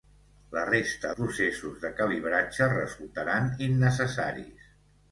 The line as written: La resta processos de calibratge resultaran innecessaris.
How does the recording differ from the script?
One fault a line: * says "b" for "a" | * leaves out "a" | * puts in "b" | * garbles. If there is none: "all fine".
all fine